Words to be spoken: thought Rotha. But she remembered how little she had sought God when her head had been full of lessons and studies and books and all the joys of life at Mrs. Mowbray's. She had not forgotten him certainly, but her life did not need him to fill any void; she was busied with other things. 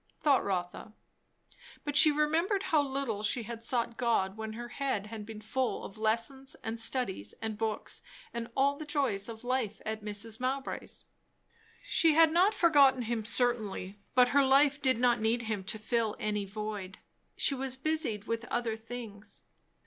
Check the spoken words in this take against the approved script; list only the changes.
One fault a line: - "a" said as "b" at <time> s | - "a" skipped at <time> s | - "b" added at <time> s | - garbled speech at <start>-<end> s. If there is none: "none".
none